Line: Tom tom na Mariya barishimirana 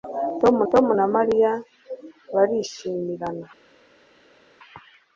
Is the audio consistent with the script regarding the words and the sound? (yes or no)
yes